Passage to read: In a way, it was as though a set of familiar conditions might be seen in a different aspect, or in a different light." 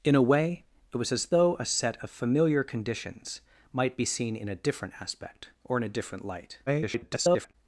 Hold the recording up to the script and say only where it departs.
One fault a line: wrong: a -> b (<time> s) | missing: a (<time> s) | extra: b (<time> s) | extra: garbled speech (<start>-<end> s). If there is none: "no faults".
extra: garbled speech (6.7-7.6 s)